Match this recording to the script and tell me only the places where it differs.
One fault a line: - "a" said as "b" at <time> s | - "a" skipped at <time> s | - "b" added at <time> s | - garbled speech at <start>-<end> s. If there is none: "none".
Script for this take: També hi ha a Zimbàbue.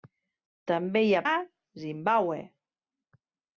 none